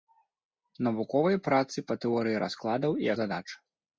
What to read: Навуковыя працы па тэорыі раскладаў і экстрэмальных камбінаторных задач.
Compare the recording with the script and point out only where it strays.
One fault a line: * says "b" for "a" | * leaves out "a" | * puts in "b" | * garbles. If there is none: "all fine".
* leaves out "экстрэмальных камбінаторных"